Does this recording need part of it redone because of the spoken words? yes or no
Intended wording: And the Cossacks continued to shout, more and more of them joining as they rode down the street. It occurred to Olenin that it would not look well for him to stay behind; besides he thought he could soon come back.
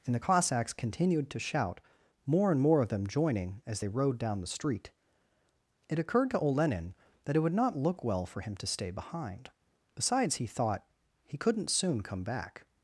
yes